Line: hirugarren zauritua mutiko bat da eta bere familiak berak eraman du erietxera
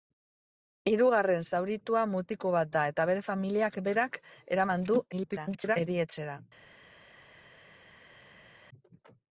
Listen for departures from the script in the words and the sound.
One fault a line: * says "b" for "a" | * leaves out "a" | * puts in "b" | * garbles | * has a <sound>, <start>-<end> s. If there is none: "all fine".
* garbles